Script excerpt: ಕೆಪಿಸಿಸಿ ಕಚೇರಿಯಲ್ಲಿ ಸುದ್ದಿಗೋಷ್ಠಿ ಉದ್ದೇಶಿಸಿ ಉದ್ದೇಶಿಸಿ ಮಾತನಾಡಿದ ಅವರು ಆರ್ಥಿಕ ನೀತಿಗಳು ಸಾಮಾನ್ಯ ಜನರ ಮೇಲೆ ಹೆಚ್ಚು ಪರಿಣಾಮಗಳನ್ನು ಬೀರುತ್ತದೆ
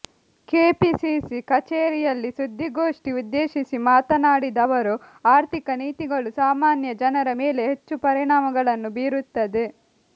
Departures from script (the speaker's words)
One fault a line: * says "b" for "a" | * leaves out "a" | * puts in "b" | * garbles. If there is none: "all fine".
* leaves out "ಉದ್ದೇಶಿಸಿ"